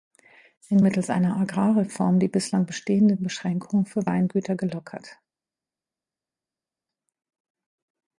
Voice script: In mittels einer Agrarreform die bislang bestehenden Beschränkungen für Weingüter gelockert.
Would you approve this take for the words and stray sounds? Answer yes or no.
yes